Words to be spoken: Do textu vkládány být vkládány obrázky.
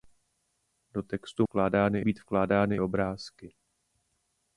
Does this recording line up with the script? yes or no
yes